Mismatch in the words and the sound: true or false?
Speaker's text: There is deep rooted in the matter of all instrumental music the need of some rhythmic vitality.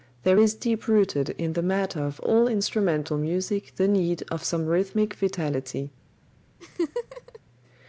true